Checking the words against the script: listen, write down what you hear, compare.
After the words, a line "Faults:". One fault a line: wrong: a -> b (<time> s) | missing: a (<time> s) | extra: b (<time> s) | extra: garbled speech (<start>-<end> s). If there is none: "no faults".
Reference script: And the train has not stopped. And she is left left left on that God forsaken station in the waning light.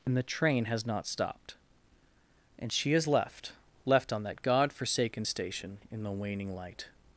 And the train has not stopped. And she is left left on that God forsaken station in the waning light.
Faults:
missing: left (4.1 s)